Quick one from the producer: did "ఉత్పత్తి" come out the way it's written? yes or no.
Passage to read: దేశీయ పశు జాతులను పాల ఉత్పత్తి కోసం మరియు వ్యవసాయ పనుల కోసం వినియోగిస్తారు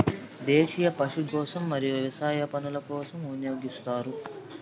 no